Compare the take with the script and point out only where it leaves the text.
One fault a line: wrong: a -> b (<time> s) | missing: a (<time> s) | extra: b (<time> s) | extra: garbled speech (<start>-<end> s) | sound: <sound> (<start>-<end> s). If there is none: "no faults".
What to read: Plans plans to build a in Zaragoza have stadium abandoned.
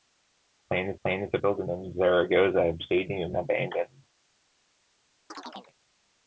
sound: chirp (5.3-5.7 s)